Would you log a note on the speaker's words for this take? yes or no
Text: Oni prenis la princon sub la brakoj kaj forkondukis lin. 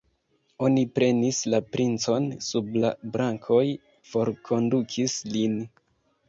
yes